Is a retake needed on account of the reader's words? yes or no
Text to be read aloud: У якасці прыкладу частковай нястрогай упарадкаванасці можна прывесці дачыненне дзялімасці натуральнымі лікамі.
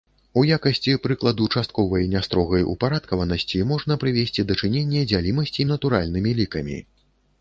no